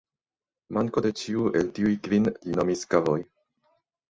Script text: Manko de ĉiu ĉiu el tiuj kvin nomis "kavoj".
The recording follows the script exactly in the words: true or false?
false